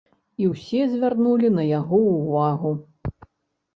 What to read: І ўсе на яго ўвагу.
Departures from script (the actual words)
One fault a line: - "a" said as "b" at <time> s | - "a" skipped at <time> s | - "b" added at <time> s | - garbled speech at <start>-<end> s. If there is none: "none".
- "звярнулі" added at 0.9 s